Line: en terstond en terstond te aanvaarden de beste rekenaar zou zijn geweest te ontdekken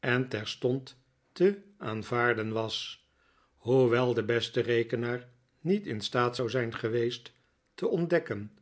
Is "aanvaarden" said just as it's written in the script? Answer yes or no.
no